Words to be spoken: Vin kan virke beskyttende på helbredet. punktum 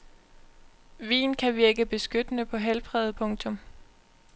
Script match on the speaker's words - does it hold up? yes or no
yes